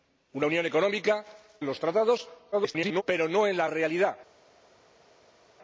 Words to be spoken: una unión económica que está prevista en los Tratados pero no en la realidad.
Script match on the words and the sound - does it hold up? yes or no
no